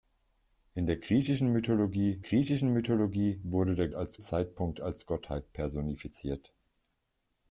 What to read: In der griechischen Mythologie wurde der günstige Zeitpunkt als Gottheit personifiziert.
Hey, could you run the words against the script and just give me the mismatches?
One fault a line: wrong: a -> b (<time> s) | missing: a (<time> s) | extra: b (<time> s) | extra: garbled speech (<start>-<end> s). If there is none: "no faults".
extra: griechischen Mythologie (2.2 s)
wrong: günstige -> als (3.9 s)